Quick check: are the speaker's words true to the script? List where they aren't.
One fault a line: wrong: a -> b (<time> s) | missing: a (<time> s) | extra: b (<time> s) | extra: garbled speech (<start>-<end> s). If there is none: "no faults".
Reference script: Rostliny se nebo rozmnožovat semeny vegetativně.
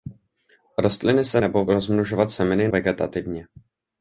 no faults